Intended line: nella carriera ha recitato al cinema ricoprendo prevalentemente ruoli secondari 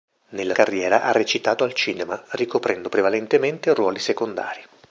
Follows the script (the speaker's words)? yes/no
yes